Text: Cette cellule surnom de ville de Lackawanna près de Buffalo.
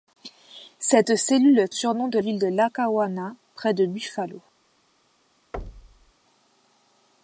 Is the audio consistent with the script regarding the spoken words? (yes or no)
yes